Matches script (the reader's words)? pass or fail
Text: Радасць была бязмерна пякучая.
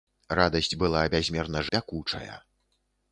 pass